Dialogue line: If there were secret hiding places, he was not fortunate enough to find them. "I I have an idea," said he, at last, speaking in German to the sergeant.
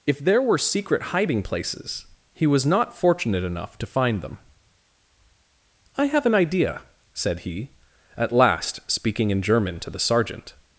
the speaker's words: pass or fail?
fail